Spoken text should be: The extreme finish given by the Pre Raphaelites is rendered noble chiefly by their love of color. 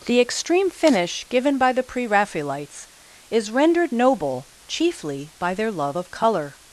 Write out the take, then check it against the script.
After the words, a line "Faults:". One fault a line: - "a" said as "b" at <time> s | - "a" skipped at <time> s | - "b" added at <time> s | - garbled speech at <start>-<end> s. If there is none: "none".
The extreme finish given by the Pre Raphaelites is rendered noble chiefly by their love of color.
Faults:
none